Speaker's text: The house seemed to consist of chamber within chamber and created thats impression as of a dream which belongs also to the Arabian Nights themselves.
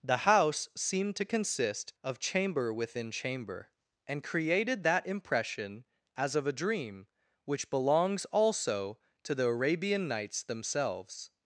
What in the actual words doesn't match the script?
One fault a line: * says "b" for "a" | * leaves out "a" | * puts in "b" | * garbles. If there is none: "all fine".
* says "that" for "thats"